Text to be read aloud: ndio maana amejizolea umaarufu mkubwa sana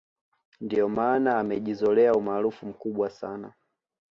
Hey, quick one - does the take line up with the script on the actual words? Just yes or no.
yes